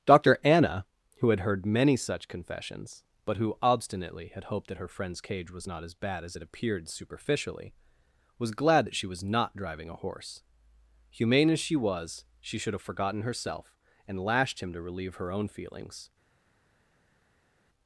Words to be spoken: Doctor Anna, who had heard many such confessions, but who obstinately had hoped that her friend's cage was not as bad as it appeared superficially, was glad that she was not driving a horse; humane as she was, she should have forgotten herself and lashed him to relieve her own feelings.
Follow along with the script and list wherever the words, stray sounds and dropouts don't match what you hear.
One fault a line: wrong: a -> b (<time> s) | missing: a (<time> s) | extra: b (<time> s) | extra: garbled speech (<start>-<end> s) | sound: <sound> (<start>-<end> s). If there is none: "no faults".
no faults